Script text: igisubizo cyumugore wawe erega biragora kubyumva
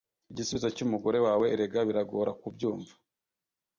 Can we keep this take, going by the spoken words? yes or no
yes